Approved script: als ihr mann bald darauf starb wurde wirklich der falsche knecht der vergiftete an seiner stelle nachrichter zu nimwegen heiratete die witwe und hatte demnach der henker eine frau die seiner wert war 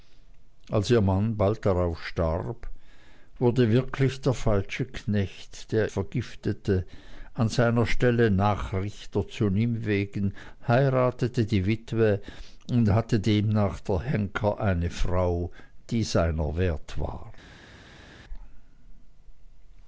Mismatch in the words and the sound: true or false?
false